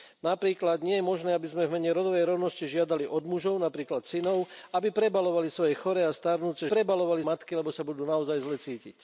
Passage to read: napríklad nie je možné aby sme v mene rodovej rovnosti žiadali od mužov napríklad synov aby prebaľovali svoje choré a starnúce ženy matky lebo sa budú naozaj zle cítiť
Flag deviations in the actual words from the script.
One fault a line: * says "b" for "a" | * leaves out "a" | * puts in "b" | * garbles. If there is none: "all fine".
* says "prebaľovali" for "ženy"